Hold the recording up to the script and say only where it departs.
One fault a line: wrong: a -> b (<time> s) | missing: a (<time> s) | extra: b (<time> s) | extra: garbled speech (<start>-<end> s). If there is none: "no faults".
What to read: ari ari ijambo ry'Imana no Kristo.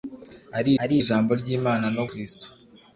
no faults